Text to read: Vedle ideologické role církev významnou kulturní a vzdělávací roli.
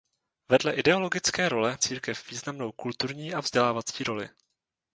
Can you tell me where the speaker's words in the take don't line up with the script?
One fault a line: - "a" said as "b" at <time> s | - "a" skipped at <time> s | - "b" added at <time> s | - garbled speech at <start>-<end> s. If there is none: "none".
none